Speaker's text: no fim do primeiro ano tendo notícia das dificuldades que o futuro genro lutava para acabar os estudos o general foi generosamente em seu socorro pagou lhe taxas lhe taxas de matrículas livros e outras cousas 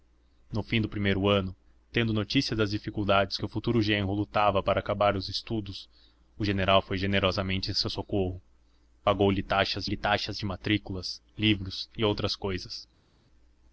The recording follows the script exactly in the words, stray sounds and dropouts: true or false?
true